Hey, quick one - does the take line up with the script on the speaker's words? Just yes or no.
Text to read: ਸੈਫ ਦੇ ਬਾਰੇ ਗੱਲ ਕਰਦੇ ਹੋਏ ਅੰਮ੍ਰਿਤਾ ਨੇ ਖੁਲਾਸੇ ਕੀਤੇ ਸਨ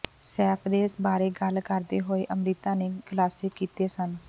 yes